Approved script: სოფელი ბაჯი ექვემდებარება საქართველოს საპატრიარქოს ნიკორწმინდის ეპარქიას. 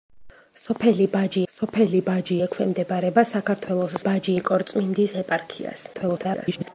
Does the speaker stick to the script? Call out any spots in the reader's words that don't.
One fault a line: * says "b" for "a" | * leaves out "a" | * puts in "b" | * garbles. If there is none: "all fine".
* puts in "სოფელი ბაჯი"
* says "ბაჯი" for "საპატრიარქოს"
* garbles